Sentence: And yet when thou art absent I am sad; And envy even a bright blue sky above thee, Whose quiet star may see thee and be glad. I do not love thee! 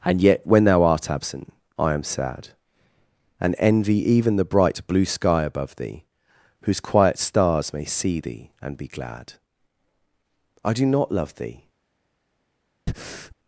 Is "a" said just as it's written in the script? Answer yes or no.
no